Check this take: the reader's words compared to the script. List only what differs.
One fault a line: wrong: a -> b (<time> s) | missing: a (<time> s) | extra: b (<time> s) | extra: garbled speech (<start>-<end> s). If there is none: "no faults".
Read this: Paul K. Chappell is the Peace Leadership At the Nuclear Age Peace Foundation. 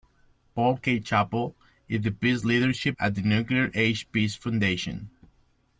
no faults